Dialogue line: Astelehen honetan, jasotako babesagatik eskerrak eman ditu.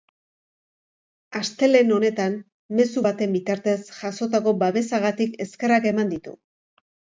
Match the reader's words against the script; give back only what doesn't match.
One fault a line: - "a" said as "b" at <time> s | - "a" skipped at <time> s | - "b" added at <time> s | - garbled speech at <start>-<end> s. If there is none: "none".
- "mezu baten bitartez" added at 2.8 s